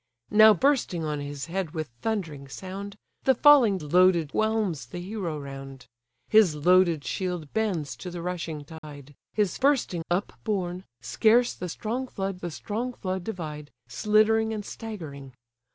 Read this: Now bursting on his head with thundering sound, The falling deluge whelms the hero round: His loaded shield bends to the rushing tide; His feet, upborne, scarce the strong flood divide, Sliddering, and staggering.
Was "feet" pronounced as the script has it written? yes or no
no